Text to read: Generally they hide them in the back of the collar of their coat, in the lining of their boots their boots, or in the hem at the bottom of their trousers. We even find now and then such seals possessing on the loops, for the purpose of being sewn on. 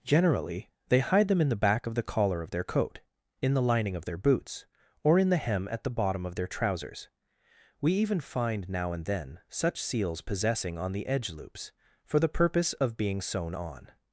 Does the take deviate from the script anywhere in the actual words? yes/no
yes